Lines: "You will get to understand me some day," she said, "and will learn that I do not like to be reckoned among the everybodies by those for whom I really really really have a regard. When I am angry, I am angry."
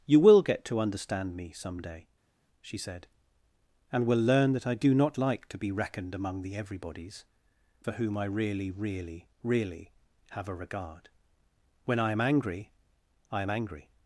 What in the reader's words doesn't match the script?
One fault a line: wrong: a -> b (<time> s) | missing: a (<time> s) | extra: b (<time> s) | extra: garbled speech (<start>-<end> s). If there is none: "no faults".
missing: by those (7.2 s)